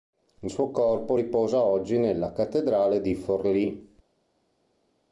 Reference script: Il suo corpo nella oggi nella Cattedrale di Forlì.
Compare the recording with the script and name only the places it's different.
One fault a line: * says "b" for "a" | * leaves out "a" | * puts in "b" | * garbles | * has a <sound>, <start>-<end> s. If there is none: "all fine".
* says "riposa" for "nella"